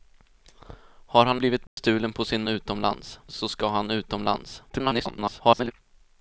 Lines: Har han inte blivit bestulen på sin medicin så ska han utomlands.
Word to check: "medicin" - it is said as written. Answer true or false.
false